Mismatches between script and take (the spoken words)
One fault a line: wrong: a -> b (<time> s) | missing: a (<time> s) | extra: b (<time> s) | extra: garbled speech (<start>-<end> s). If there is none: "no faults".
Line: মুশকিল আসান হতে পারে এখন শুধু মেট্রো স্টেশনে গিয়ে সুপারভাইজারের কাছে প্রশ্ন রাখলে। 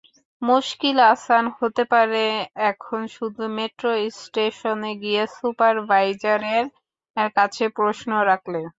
no faults